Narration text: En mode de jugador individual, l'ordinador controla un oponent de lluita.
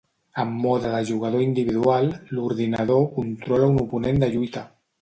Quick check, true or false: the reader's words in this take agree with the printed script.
true